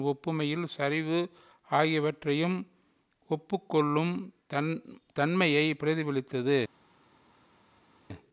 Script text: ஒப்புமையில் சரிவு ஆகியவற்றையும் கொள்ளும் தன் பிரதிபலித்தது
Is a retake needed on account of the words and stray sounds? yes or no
yes